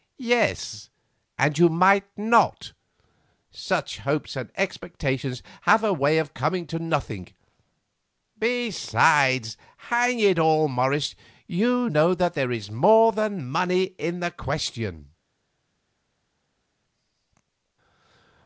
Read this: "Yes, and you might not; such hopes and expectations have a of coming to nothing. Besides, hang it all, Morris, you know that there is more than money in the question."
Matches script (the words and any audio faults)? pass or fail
fail